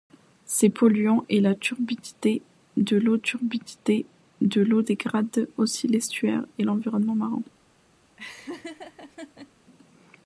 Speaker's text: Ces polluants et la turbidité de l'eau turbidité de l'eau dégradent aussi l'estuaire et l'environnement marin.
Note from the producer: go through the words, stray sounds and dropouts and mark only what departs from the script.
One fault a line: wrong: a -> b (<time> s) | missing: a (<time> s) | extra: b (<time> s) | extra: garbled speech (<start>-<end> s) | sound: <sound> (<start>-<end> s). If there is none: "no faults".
sound: laugh (8.2-9.5 s)